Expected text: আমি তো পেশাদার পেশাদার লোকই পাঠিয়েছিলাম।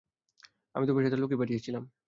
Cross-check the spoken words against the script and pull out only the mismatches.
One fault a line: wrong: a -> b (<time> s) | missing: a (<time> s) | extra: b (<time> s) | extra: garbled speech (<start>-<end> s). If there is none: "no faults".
missing: পেশাদার (1.2 s)